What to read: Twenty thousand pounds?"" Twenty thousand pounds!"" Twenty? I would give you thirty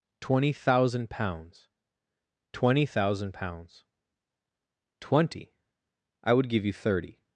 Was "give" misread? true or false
false